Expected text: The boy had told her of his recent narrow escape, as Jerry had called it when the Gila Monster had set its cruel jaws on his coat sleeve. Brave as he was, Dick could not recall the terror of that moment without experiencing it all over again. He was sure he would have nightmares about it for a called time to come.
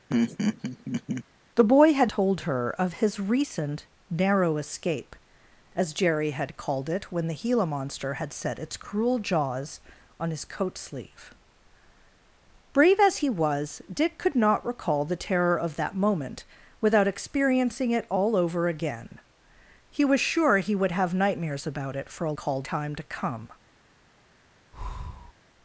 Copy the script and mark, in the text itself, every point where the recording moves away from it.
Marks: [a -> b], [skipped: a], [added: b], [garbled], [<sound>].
[laugh] The boy had told her of his recent narrow escape, as Jerry had called it when the Gila Monster had set its cruel jaws on his coat sleeve. Brave as he was, Dick could not recall the terror of that moment without experiencing it all over again. He was sure he would have nightmares about it for a called time to come. [breath]